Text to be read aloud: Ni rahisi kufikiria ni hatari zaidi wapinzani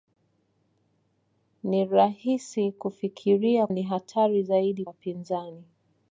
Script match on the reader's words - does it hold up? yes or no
yes